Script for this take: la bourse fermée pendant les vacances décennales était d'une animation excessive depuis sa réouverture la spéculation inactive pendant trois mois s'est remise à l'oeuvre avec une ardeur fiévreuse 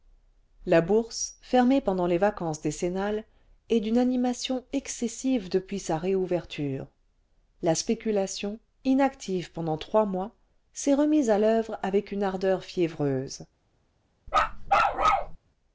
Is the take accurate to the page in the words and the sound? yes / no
no